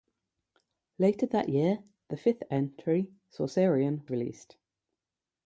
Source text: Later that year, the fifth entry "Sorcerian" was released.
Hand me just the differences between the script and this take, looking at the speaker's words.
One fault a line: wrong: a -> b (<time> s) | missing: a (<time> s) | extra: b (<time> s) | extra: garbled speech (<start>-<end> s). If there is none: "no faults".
missing: was (4.1 s)